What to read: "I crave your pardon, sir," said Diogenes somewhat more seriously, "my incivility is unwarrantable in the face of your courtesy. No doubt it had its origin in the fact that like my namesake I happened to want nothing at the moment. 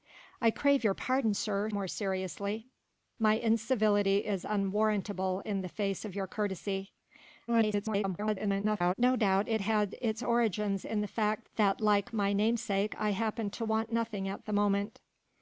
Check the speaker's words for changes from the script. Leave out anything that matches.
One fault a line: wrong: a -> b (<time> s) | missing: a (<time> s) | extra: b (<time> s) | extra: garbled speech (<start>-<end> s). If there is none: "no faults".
missing: said Diogenes somewhat (1.7 s)
extra: garbled speech (7.5-8.9 s)